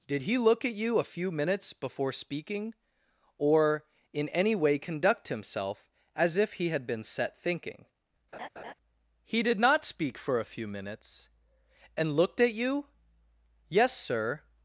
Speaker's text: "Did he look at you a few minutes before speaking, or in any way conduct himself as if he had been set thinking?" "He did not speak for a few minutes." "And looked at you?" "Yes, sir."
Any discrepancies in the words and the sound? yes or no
yes